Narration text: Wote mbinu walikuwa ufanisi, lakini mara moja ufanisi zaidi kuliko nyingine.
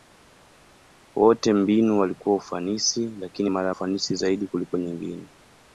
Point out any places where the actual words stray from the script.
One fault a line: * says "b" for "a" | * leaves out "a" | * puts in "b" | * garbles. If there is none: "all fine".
* leaves out "moja"